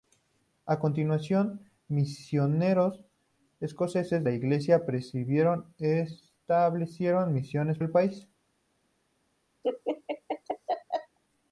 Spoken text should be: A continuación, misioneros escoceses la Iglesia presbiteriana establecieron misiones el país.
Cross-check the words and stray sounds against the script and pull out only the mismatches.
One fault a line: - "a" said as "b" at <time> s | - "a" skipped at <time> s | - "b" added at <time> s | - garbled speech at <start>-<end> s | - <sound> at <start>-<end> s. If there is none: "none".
- laugh at 9.6-11.2 s